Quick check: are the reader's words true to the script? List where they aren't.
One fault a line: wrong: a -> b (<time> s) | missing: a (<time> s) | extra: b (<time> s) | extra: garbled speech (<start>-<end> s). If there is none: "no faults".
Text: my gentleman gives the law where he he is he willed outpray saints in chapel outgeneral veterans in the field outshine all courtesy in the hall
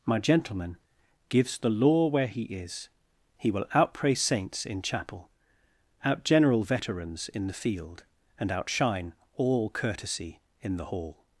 missing: he (2.4 s)
wrong: willed -> will (3.5 s)
extra: and (8.4 s)